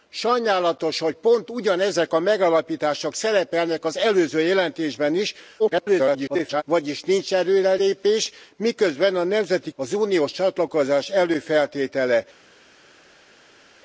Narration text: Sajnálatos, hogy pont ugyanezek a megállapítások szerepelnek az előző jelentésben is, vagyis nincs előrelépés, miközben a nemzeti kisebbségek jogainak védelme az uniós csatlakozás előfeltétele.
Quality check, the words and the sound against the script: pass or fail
fail